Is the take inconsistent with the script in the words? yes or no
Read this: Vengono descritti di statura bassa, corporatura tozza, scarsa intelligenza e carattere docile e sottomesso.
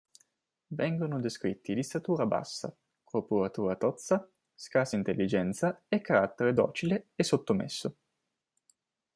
no